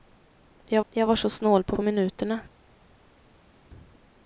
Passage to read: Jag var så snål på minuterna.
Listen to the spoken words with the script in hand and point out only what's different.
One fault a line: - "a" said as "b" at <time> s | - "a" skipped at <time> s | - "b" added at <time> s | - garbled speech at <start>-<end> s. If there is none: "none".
- "jag" added at 0.9 s
- "på" added at 1.7 s